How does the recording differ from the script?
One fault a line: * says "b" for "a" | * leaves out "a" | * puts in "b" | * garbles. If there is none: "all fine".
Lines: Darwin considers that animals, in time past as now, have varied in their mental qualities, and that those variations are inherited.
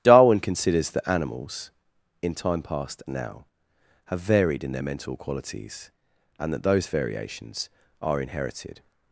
* leaves out "as"